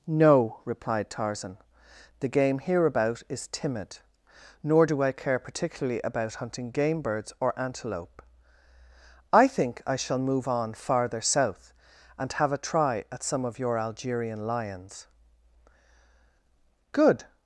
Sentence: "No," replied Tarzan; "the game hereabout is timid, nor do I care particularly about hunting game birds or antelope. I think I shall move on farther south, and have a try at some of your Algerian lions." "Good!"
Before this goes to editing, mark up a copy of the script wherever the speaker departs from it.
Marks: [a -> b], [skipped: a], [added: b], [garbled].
"No," replied Tarzan; "the game hereabout is timid, nor do I care particularly about hunting game birds or antelope. I think I shall move on farther south, and have a try at some of your Algerian lions." "Good!"